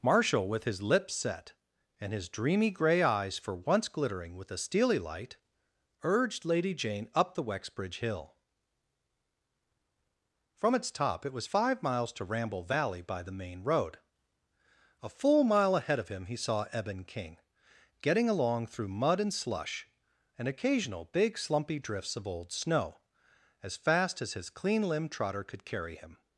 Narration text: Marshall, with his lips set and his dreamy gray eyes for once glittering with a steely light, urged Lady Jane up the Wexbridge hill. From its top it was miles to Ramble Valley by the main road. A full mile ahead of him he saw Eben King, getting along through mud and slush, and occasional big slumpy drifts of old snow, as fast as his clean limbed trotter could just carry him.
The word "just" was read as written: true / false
false